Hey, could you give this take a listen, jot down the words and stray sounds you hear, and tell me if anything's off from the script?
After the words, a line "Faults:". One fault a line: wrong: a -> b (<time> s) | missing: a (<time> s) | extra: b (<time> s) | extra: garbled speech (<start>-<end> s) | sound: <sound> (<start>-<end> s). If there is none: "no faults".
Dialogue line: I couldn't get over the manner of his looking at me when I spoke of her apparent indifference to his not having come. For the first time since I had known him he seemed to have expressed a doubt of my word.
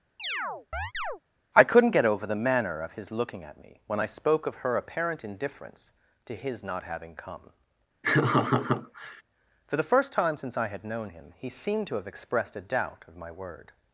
I couldn't get over the manner of his looking at me when I spoke of her apparent indifference to his not having come. For the first time since I had known him he seemed to have expressed a doubt of my word.
Faults:
sound: chirp (0.2-1.2 s)
sound: laugh (8.0-9.2 s)